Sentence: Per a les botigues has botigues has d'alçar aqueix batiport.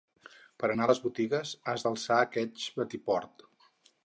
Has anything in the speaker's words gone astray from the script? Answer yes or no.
yes